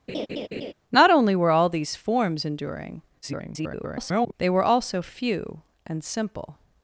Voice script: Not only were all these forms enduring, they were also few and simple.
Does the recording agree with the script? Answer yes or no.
no